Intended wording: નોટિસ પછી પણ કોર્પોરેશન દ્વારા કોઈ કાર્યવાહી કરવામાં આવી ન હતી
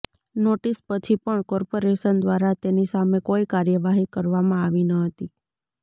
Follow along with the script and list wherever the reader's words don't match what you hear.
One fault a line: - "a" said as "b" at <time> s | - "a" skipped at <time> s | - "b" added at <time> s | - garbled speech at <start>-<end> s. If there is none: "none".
- "તેની સામે" added at 2.6 s